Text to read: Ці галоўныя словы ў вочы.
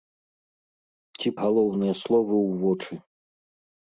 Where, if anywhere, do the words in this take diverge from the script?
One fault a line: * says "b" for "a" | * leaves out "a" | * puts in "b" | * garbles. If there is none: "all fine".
all fine